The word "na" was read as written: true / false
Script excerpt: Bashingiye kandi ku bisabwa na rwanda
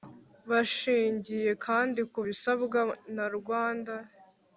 true